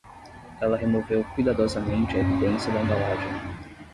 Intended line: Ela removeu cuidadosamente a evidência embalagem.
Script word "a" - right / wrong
right